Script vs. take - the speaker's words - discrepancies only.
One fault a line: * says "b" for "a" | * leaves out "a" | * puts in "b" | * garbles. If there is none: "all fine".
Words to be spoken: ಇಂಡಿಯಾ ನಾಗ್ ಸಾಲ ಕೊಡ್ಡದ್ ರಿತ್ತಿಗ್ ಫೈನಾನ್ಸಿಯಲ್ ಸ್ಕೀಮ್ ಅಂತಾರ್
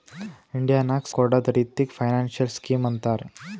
* leaves out "ಸಾಲ"